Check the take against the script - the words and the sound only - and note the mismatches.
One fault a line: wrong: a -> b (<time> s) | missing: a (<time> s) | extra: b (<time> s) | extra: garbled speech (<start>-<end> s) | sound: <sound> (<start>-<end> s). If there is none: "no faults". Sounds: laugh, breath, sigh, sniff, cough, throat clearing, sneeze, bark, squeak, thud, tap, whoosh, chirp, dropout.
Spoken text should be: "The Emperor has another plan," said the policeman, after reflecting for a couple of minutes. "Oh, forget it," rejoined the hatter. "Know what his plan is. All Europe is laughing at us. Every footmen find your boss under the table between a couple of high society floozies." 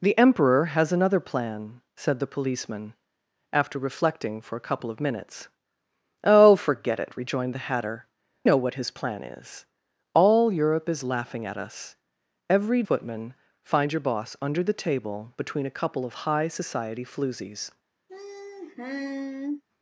sound: sigh (18.1-19.6 s)